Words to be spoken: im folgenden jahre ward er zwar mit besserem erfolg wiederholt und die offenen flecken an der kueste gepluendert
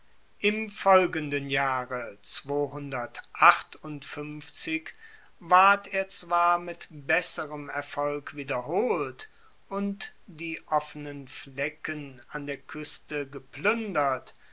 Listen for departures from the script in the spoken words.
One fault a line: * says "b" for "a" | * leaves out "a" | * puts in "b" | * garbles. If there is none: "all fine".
all fine